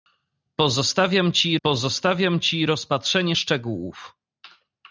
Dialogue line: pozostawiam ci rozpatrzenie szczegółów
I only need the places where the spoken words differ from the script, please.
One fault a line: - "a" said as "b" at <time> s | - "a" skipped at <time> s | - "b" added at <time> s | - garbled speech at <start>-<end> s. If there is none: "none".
- "pozostawiam ci" added at 1.6 s